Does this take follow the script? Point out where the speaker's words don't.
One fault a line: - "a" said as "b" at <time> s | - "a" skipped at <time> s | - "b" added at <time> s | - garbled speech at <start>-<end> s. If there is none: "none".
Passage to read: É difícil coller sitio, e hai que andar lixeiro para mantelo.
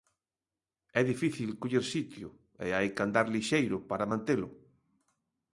none